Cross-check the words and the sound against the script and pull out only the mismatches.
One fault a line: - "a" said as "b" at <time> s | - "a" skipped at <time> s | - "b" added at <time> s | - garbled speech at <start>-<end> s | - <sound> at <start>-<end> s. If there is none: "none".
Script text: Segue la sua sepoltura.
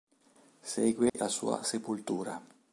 - dropout at 1.1-1.1 s